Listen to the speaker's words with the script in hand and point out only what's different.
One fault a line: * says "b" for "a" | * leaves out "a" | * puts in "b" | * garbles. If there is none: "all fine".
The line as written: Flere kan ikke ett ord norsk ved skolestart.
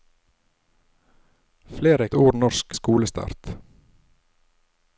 * leaves out "kan ikke ett"
* leaves out "ved"